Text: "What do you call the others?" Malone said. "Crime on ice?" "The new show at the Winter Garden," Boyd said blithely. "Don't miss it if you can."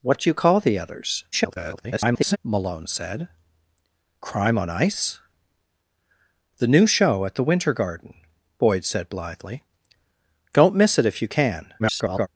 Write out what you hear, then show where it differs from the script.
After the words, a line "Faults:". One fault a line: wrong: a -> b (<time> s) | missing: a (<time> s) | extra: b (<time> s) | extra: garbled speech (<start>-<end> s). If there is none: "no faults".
"What do you call the others?" [garbled] Malone said. "Crime on ice?" "The new show at the Winter Garden," Boyd said blithely. "Don't miss it if you can." [garbled]
Faults:
extra: garbled speech (1.3-2.4 s)
extra: garbled speech (11.8-12.3 s)